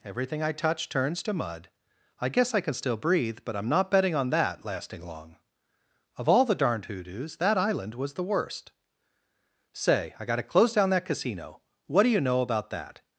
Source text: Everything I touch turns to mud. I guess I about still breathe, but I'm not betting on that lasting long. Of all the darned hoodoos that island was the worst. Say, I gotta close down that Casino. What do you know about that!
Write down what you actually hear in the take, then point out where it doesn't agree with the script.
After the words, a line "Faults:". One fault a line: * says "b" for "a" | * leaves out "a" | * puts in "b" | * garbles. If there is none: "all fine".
Everything I touch turns to mud. I guess I can still breathe, but I'm not betting on that lasting long. Of all the darned hoodoos that island was the worst. Say, I gotta close down that Casino. What do you know about that!
Faults:
* says "can" for "about"